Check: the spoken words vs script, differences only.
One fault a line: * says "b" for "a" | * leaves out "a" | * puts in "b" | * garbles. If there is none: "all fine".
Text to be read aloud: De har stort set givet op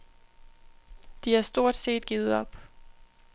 all fine